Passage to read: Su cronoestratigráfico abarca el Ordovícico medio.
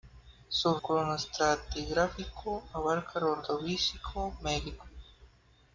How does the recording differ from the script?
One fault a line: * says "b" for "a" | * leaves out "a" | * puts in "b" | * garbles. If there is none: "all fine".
all fine